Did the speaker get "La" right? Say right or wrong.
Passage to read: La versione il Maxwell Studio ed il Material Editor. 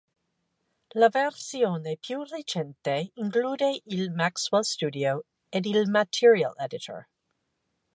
right